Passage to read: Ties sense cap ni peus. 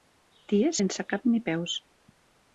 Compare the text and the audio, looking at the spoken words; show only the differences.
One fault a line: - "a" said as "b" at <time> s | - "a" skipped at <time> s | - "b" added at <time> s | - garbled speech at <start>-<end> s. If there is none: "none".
none